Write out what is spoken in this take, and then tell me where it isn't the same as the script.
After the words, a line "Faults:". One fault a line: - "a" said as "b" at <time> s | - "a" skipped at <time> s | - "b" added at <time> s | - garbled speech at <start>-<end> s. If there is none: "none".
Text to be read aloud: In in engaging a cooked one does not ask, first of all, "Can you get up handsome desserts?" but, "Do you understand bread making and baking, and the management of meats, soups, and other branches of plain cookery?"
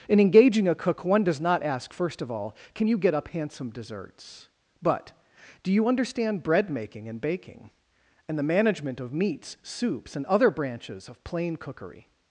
In engaging a cook one does not ask, first of all, "Can you get up handsome desserts?" but, "Do you understand bread making and baking, and the management of meats, soups, and other branches of plain cookery?"
Faults:
- "in" skipped at 0.2 s
- "cooked" said as "cook" at 0.8 s